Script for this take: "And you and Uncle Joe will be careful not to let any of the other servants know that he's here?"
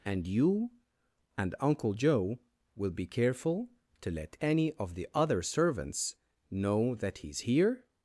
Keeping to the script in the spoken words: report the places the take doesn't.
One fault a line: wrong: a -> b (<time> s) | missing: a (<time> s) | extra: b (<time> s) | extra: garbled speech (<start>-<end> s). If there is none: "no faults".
missing: not (3.7 s)